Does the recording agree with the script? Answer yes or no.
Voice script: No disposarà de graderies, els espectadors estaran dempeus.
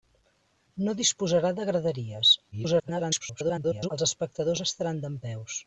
no